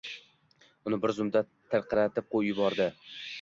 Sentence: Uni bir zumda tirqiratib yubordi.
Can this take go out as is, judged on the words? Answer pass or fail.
pass